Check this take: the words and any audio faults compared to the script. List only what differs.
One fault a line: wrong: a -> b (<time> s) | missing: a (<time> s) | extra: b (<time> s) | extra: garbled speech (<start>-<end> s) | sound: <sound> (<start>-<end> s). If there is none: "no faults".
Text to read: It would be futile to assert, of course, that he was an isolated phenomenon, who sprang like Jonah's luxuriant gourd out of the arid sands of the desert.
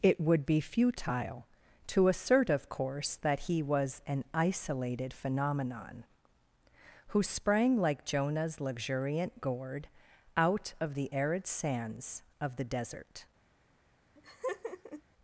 sound: laugh (14.2-15.0 s)